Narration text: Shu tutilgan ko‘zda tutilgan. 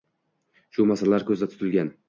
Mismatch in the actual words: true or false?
true